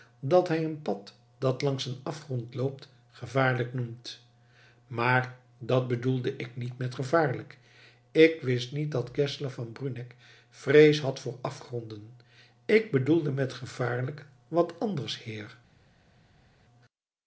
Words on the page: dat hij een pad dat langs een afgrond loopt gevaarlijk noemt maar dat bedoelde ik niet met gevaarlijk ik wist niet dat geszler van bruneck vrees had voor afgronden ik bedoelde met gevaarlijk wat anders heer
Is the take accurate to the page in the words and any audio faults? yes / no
yes